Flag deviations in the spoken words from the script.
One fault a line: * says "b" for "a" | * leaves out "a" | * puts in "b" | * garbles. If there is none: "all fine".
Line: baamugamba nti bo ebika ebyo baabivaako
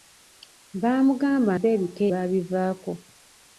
* leaves out "nti"
* leaves out "ebyo"